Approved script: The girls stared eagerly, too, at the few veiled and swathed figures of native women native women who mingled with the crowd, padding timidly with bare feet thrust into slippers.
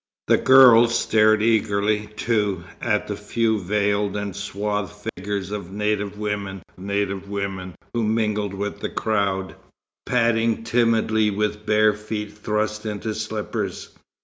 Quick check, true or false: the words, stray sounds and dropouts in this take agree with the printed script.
false